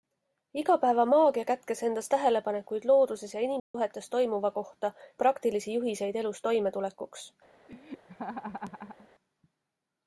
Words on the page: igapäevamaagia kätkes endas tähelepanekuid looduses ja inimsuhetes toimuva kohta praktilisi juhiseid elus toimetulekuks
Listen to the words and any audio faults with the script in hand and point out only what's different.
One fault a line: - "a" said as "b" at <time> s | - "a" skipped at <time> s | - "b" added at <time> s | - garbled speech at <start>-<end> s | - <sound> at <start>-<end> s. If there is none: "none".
- dropout at 3.6-3.7 s
- laugh at 7.7-9.1 s